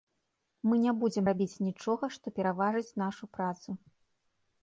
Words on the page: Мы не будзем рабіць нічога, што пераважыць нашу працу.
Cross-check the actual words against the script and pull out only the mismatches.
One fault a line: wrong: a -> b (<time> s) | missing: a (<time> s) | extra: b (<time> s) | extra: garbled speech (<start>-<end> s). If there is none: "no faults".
no faults